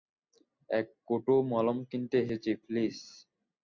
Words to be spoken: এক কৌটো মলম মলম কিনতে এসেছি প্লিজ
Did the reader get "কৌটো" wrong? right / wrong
right